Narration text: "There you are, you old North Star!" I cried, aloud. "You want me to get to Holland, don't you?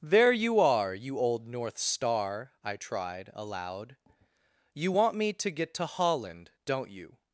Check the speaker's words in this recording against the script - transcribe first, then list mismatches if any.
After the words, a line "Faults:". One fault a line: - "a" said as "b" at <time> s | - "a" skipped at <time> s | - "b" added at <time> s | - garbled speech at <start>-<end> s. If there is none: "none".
"There you are, you old North Star!" I tried, aloud. "You want me to get to Holland, don't you?
Faults:
- "cried" said as "tried" at 2.7 s